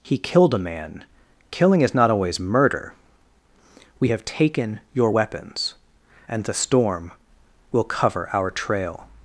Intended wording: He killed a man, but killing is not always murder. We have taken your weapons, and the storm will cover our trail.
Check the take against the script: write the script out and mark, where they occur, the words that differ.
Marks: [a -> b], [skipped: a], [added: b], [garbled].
He killed a man, [skipped: but] killing is not always murder. We have taken your weapons, and the storm will cover our trail.